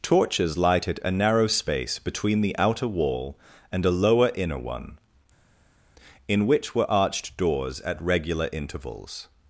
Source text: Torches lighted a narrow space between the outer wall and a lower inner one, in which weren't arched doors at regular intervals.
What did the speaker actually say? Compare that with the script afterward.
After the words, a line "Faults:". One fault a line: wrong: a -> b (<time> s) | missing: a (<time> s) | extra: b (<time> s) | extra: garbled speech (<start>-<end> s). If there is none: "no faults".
Torches lighted a narrow space between the outer wall and a lower inner one, in which were arched doors at regular intervals.
Faults:
wrong: weren't -> were (6.7 s)